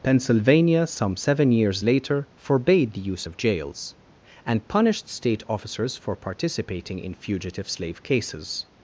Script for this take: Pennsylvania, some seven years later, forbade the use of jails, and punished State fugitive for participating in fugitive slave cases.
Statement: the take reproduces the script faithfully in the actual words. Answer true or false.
false